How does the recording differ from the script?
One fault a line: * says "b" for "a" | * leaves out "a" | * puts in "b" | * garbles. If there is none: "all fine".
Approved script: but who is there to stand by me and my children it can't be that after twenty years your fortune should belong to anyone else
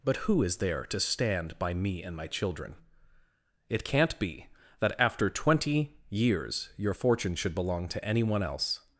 all fine